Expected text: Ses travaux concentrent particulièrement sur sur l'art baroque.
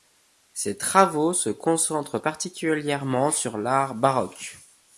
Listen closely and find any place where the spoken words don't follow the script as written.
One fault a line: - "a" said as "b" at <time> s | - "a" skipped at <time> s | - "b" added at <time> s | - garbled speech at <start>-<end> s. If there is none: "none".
- "se" added at 1.3 s
- "sur" skipped at 3.6 s